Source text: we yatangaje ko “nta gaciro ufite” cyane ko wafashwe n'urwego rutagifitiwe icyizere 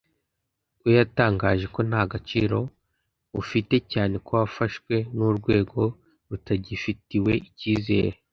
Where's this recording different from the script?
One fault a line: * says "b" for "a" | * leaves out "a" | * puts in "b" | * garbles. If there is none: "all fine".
all fine